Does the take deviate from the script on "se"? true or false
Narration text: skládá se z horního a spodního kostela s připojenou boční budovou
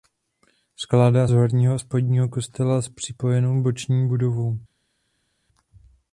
true